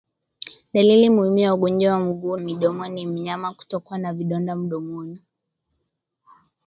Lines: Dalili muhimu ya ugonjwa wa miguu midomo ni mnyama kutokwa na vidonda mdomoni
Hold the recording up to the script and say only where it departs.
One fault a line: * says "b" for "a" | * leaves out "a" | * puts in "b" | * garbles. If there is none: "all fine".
all fine